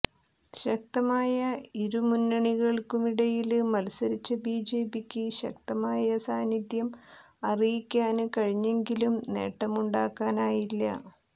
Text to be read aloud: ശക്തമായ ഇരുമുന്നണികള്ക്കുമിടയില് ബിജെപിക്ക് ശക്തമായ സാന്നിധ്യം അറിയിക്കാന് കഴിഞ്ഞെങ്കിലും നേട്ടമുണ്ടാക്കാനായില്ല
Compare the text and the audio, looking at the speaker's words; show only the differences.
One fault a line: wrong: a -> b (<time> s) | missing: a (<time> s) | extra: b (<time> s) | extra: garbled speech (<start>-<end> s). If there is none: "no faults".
extra: മത്സരിച്ച (3.7 s)